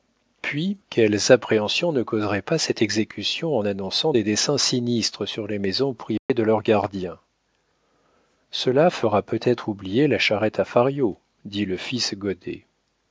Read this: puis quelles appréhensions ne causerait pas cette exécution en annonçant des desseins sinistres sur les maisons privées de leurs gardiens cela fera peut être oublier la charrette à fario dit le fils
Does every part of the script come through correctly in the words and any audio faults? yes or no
no